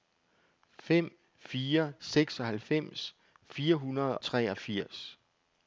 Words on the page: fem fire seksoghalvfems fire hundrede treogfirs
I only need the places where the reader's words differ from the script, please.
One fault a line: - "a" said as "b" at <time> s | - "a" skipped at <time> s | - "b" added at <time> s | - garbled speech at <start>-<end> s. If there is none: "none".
none